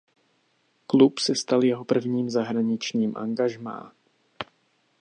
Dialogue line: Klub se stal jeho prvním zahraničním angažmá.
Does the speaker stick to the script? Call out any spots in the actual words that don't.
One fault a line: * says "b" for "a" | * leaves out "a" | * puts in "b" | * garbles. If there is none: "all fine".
all fine